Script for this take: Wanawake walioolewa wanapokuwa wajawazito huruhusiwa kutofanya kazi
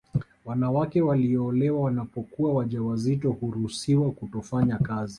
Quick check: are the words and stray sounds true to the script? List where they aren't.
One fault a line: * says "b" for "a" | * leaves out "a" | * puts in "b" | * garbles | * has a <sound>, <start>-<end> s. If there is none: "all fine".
all fine